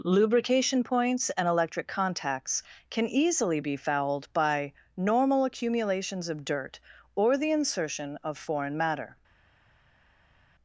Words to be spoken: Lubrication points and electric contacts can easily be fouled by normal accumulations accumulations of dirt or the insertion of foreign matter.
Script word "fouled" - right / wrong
right